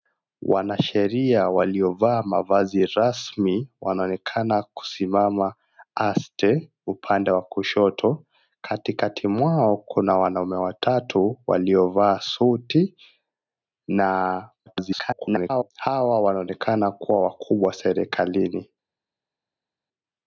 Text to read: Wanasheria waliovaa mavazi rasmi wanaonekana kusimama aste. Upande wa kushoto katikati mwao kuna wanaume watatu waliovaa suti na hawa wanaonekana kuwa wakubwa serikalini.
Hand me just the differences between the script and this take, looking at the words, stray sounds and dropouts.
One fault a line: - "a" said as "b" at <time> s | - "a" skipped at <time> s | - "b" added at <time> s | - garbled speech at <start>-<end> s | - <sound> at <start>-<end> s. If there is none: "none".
- garbled speech at 14.7-15.7 s